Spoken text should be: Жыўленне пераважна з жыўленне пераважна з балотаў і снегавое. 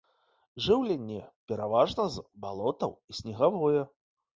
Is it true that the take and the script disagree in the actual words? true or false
true